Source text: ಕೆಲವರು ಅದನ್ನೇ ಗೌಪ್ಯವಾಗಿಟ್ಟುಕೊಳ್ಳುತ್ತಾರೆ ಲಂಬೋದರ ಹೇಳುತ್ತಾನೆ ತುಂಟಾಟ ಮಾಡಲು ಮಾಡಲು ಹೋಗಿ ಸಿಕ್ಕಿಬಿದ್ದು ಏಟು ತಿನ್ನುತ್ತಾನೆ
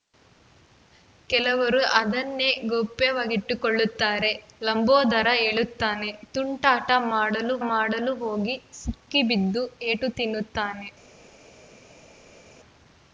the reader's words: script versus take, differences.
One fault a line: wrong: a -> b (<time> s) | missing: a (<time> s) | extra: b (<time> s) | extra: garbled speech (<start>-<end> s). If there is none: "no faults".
no faults